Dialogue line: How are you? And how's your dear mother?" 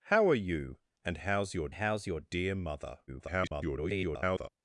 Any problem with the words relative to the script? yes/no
yes